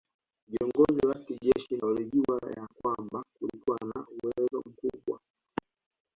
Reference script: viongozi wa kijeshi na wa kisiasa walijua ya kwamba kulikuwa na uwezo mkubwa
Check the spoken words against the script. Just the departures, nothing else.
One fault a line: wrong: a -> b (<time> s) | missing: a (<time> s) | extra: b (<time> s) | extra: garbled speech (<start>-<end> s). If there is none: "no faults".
missing: na wa kisiasa (1.8 s)